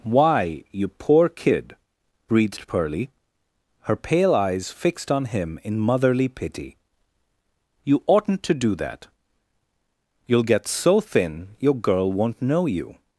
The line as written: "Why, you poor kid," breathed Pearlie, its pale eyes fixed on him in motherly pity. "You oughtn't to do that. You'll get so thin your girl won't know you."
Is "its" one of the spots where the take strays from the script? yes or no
yes